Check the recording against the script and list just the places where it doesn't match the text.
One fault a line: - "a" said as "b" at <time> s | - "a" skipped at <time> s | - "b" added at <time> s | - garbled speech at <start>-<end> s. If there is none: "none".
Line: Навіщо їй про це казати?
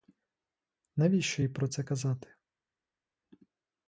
none